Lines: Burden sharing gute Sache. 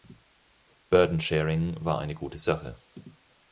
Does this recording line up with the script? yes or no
no